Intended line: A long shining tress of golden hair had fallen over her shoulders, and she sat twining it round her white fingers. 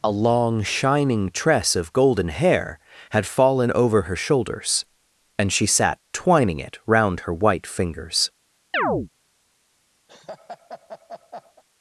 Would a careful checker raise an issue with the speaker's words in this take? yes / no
no